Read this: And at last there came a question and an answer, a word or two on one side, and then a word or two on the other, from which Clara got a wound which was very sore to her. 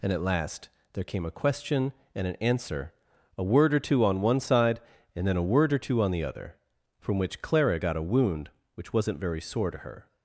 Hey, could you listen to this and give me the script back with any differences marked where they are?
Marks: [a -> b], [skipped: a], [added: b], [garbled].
And at last there came a question and an answer, a word or two on one side, and then a word or two on the other, from which Clara got a wound which [was -> wasn't] very sore to her.